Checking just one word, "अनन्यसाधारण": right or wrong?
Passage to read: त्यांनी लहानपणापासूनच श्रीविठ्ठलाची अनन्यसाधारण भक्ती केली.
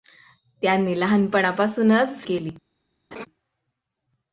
wrong